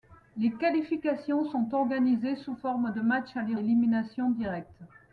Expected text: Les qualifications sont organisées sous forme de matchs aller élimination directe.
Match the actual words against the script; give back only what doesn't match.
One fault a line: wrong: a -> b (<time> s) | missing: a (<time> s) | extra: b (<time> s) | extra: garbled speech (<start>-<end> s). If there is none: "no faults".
no faults